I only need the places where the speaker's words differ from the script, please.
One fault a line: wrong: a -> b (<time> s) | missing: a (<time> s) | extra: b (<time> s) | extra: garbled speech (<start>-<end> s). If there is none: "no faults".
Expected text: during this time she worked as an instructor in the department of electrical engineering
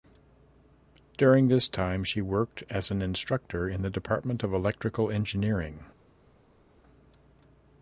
no faults